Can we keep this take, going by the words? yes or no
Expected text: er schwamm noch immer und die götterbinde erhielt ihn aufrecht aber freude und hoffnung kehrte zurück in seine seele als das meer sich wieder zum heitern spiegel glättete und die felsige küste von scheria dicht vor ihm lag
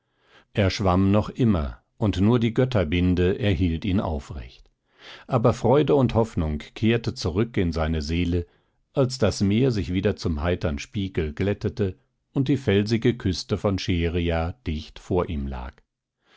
no